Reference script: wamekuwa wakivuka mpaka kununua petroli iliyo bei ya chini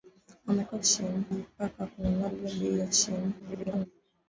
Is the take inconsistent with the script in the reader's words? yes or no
yes